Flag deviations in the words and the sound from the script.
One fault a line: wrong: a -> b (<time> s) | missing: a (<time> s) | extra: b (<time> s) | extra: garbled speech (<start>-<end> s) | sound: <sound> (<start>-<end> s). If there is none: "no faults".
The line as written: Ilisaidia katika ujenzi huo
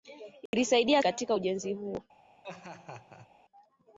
sound: dropout (0.5-0.5 s)
sound: laugh (2.4-3.3 s)